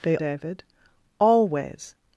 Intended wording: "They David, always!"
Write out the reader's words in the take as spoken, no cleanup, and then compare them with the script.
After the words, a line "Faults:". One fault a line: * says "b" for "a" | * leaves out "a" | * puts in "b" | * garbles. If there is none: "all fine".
"They David, always!"
Faults:
all fine